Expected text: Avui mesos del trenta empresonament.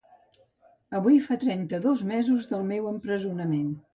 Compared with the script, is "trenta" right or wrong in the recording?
wrong